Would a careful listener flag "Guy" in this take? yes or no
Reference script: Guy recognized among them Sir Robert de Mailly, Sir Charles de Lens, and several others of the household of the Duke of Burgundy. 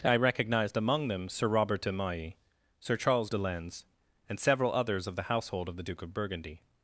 yes